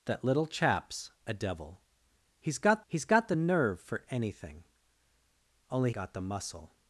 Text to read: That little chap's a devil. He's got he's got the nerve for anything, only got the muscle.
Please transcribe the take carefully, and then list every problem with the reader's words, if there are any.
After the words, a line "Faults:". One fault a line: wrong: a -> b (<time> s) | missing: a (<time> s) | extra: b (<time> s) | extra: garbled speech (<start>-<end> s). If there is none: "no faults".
That little chap's a devil. He's got he's got the nerve for anything, only got the muscle.
Faults:
no faults